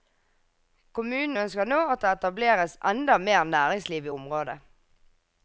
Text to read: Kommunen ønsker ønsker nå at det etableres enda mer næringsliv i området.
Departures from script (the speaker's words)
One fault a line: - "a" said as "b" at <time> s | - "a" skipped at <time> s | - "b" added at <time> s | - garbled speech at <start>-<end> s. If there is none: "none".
- "ønsker" skipped at 1.7 s